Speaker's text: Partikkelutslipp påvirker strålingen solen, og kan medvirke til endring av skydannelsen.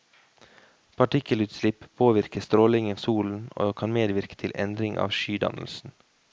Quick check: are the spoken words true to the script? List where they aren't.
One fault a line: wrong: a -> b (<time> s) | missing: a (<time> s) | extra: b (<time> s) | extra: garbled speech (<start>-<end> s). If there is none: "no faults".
no faults